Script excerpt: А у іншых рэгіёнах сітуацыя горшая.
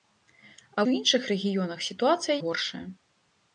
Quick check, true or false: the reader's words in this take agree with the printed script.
true